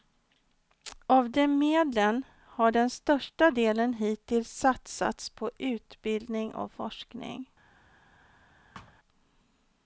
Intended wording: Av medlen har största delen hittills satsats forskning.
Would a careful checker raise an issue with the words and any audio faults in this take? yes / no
yes